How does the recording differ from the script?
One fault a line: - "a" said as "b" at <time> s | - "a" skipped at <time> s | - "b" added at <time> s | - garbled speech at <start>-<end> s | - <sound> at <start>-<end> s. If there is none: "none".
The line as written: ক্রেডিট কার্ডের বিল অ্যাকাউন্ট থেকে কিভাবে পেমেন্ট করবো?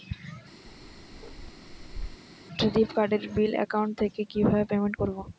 - bark at 0.7-2.2 s